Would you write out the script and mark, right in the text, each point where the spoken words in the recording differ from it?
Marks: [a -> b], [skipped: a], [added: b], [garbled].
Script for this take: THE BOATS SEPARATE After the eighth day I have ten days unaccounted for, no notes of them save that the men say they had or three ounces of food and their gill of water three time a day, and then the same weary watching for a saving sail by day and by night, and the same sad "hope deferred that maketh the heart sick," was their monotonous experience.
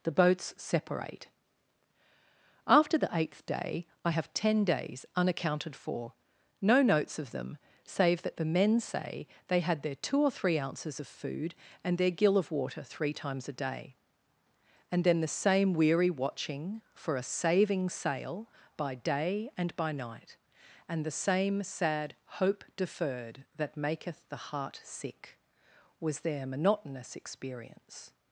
THE BOATS SEPARATE After the eighth day I have ten days unaccounted for, no notes of them save that the men say they had [added: their two] or three ounces of food and their gill of water three [time -> times] a day, and then the same weary watching for a saving sail by day and by night, and the same sad "hope deferred that maketh the heart sick," was their monotonous experience.